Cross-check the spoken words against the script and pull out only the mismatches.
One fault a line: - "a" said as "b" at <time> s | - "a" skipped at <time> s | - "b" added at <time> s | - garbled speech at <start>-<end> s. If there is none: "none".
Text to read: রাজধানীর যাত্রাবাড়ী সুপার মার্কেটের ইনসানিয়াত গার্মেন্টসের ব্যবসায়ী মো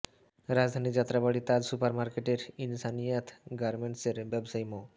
- "তাজ" added at 1.4 s